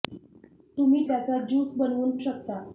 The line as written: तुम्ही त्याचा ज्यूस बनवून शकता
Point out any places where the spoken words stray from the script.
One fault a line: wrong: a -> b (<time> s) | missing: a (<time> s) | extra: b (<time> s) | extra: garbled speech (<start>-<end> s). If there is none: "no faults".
no faults